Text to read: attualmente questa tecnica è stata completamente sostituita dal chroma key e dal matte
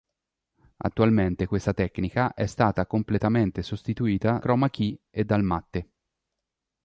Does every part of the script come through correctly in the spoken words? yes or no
no